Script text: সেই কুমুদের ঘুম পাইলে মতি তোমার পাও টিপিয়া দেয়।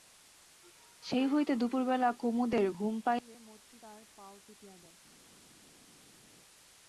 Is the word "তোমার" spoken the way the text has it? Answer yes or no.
no